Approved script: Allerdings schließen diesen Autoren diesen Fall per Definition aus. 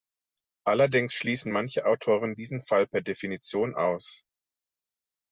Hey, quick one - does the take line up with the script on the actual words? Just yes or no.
no